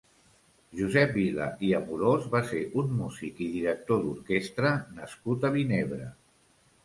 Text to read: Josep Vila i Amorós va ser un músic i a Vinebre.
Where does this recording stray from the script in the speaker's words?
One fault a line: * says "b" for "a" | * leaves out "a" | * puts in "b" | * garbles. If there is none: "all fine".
* puts in "director d'orquestra nascut"